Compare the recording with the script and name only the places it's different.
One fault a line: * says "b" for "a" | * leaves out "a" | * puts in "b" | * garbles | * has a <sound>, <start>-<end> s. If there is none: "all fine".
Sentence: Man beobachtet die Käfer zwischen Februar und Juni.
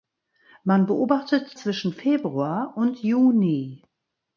* leaves out "die Käfer"